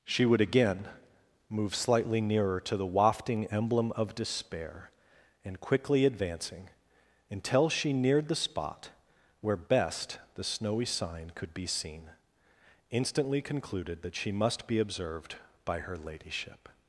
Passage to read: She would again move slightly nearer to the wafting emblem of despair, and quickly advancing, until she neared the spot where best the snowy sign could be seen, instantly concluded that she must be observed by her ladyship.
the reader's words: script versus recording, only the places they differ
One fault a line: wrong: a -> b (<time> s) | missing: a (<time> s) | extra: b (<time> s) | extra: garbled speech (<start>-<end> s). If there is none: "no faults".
no faults